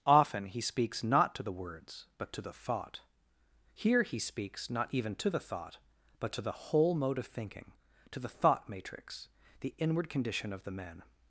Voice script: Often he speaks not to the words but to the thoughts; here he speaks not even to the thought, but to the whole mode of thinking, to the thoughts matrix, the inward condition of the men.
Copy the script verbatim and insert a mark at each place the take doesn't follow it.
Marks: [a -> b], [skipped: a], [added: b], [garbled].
Often he speaks not to the words but to the [thoughts; -> thought] here he speaks not even to the thought, but to the whole mode of thinking, to the [thoughts -> thought] matrix, the inward condition of the men.